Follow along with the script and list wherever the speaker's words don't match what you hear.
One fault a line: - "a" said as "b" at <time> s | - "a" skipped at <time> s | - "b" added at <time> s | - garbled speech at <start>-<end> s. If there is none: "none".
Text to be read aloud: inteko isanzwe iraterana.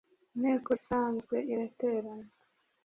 none